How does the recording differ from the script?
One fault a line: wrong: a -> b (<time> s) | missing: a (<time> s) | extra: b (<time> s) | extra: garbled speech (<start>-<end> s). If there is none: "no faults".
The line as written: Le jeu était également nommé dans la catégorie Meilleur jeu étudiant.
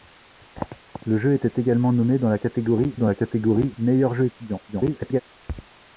extra: dans la catégorie (3.0 s)
extra: garbled speech (4.7-5.2 s)